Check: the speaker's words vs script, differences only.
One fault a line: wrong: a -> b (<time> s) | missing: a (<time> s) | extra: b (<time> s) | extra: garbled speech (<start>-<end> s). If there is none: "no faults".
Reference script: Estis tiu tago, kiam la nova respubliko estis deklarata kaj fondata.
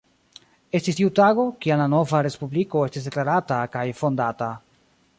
no faults